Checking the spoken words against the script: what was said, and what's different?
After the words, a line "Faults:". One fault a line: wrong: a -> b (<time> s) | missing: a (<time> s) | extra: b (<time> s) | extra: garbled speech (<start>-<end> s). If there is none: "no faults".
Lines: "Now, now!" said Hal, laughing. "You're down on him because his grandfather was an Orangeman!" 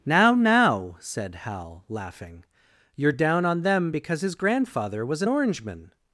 "Now, now!" said Hal, laughing. "You're down on them because his grandfather was an Orangeman!"
Faults:
wrong: him -> them (3.6 s)